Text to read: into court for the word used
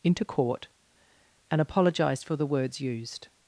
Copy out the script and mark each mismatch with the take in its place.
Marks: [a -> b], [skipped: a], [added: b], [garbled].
into court [added: and apologised] for the [word -> words] used